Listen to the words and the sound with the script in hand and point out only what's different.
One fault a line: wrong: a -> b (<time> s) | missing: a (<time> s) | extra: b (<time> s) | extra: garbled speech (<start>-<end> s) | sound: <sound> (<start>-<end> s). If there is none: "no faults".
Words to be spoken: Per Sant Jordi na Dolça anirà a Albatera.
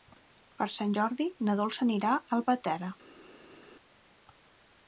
no faults